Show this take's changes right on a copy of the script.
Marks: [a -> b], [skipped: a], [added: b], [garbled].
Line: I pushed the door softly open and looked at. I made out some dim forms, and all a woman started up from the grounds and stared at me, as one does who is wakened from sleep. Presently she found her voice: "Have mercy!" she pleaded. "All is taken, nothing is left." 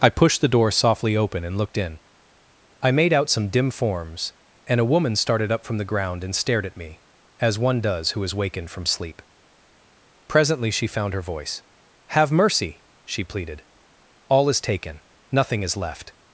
I pushed the door softly open and looked [at. -> in] I made out some dim forms, and [skipped: all] a woman started up from the [grounds -> ground] and stared at me, as one does who is wakened from sleep. Presently she found her voice: "Have mercy!" she pleaded. "All is taken, nothing is left."